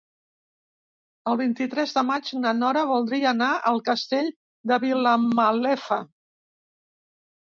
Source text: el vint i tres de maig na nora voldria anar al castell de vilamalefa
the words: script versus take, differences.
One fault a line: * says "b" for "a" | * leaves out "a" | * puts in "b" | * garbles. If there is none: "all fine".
all fine